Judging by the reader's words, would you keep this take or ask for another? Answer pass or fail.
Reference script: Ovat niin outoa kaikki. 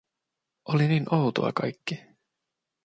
fail